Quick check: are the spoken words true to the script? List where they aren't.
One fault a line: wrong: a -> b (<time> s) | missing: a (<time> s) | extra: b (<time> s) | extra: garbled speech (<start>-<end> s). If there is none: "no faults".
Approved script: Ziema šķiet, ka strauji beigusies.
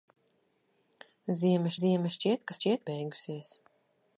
extra: ziema (1.8 s)
wrong: strauji -> šķiet (2.6 s)